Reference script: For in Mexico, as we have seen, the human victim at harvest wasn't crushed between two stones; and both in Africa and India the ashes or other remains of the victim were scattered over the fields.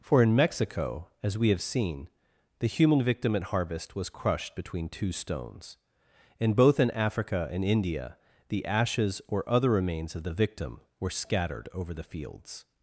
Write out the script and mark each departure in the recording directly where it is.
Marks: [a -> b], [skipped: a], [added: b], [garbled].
For in Mexico, as we have seen, the human victim at harvest [wasn't -> was] crushed between two stones; and both in Africa and India the ashes or other remains of the victim were scattered over the fields.